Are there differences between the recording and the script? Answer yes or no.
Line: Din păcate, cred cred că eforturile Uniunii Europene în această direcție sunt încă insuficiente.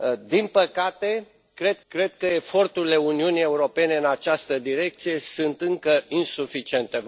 no